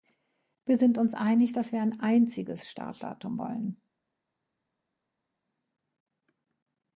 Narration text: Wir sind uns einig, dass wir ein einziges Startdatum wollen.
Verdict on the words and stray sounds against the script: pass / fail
pass